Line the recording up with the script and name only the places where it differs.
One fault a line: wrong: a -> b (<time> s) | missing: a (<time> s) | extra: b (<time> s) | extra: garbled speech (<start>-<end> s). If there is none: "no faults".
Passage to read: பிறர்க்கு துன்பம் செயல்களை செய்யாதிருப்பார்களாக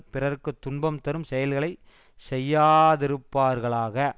extra: தரும் (1.0 s)